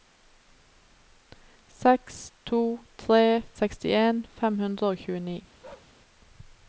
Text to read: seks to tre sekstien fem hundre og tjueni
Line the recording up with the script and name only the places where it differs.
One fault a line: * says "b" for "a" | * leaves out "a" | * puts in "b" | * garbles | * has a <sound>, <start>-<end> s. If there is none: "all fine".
* has a bark, 5.6-6.0 s